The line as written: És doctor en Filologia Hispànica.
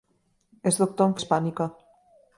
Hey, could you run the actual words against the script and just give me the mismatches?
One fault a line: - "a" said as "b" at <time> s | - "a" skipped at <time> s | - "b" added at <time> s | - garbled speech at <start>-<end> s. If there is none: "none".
- "Filologia" skipped at 1.1 s